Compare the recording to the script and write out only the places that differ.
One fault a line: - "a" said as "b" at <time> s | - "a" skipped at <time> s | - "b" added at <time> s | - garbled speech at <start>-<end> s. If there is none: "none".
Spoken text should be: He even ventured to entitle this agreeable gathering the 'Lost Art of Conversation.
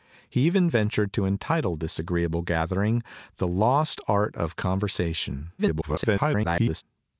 - garbled speech at 5.6-6.8 s